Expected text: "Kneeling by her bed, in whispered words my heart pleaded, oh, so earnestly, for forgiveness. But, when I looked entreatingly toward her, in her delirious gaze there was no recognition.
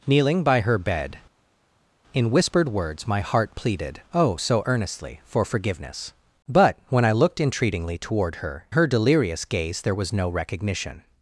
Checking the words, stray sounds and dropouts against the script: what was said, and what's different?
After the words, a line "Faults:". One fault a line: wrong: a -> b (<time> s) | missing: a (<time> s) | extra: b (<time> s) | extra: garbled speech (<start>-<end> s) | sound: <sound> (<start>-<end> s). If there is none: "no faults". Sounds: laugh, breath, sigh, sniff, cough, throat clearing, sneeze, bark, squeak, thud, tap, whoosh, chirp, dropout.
"Kneeling by her bed, in whispered words my heart pleaded, oh, so earnestly, for forgiveness. But, when I looked entreatingly toward her, her delirious gaze there was no recognition.
Faults:
missing: in (8.7 s)